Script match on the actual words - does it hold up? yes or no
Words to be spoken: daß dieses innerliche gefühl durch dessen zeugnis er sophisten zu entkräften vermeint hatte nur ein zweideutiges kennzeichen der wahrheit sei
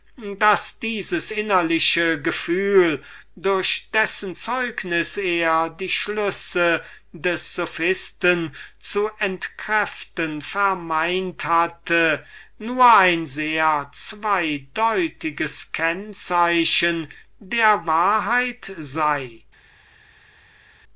no